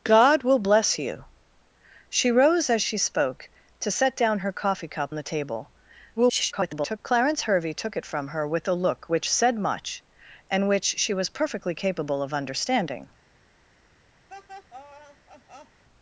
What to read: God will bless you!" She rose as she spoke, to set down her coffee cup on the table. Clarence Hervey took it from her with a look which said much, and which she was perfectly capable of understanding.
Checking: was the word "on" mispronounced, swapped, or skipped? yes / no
yes